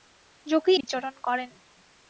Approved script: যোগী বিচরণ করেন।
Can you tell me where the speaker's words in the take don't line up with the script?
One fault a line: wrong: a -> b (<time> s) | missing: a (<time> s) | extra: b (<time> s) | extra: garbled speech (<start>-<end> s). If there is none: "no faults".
no faults